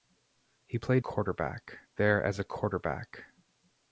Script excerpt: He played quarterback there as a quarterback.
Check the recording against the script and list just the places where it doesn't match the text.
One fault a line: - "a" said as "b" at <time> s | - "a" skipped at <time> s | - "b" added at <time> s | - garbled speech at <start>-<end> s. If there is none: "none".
none